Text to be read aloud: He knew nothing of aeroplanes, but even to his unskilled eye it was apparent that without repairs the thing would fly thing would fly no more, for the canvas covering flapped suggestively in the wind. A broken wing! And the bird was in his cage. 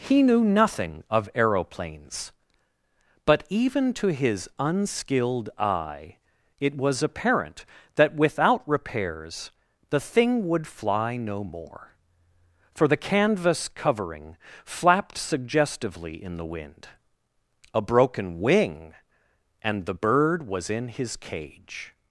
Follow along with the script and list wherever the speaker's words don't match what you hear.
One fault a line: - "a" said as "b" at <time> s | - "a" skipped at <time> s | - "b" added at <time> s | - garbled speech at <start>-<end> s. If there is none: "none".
- "thing would fly" skipped at 11.2 s